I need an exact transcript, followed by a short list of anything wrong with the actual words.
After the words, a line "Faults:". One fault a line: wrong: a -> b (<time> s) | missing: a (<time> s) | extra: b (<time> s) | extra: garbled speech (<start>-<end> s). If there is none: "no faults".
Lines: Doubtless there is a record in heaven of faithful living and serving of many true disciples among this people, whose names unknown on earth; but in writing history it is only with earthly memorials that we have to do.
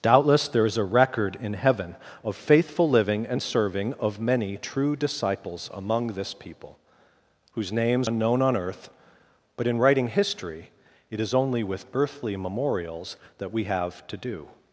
Doubtless there is a record in heaven of faithful living and serving of many true disciples among this people, whose names unknown on earth; but in writing history it is only with earthly memorials that we have to do.
Faults:
no faults